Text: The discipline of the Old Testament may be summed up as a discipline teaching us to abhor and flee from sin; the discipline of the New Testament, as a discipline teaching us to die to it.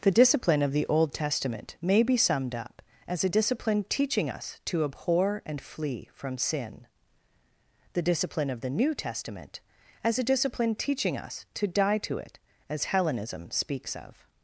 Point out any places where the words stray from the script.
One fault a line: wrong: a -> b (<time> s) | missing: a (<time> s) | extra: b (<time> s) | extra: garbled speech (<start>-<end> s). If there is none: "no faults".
extra: As Hellenism speaks of (12.7 s)